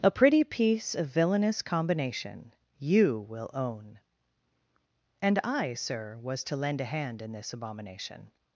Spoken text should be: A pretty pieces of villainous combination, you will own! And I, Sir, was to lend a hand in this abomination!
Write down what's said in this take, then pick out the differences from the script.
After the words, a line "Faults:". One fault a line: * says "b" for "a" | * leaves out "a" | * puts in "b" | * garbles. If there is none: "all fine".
A pretty piece of villainous combination, you will own! And I, Sir, was to lend a hand in this abomination!
Faults:
* says "piece" for "pieces"